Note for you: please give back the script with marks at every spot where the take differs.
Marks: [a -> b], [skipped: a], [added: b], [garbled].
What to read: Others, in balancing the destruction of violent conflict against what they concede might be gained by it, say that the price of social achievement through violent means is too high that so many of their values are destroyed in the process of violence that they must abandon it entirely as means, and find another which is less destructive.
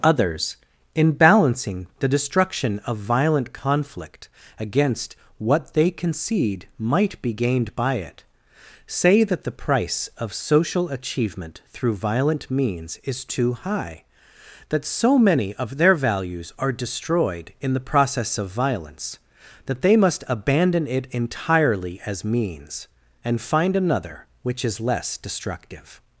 Others, in balancing the destruction of violent conflict against what they concede might be gained by it, say that the price of social achievement through violent means is too high that so many of their values are destroyed in the process of violence that they must abandon it entirely as means, and find another which is less destructive.